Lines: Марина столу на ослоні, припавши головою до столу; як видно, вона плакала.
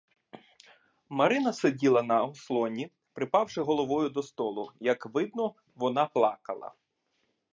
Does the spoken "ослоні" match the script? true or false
true